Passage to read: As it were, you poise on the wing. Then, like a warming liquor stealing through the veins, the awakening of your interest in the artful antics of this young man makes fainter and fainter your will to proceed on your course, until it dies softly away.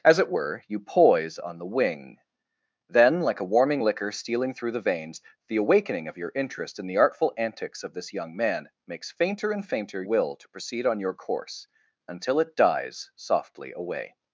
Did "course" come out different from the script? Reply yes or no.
no